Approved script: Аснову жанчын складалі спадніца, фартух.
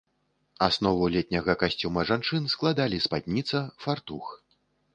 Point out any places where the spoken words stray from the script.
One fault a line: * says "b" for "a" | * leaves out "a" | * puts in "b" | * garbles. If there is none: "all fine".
* puts in "летняга касцюма"